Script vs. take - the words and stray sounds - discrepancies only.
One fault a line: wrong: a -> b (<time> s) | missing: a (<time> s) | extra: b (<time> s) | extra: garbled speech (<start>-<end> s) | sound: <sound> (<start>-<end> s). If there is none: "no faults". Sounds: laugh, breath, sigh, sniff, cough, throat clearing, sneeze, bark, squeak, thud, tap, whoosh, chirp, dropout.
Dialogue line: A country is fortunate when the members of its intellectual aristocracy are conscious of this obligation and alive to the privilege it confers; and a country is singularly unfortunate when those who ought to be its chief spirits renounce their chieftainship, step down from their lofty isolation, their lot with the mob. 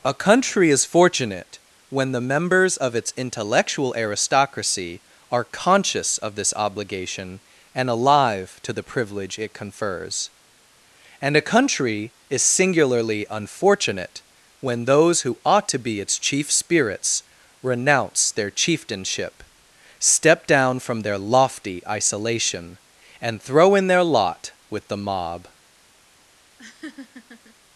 extra: and throw in (23.2 s)
sound: laugh (26.6-27.6 s)